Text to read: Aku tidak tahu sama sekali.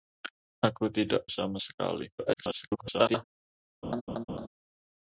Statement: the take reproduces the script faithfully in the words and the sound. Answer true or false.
false